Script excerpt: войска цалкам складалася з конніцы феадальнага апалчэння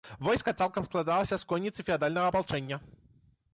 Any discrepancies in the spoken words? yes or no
no